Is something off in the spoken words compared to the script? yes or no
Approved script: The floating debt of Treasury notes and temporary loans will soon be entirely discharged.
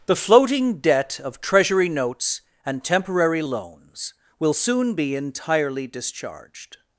no